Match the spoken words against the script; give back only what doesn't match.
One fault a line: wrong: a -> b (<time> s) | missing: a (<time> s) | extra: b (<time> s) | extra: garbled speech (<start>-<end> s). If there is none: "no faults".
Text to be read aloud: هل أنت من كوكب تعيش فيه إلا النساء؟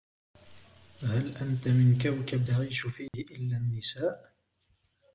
no faults